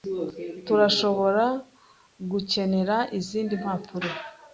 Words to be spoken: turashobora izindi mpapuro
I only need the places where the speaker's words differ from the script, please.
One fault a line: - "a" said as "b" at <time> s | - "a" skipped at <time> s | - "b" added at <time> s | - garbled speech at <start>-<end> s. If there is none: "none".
- "gukenera" added at 2.3 s